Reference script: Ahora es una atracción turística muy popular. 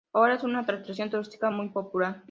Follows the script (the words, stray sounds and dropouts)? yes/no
yes